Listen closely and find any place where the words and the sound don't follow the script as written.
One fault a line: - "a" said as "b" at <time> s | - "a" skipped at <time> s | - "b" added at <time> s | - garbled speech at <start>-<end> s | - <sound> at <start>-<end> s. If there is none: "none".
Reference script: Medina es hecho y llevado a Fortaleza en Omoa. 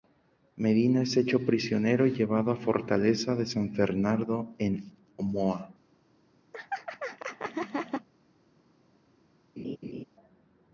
- "prisionero" added at 1.4 s
- "de San Fernando" added at 3.4 s
- laugh at 6.5-8.1 s
- laugh at 9.6-10.0 s